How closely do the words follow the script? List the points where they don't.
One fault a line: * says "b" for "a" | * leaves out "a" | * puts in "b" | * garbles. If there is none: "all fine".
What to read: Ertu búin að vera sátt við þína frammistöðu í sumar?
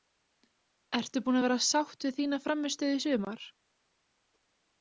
all fine